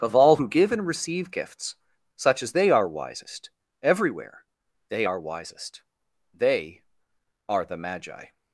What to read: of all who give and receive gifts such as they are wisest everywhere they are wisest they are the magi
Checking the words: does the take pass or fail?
pass